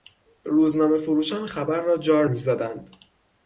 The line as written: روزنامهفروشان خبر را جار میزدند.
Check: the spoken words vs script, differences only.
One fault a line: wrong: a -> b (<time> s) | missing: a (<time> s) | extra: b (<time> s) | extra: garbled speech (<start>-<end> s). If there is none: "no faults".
no faults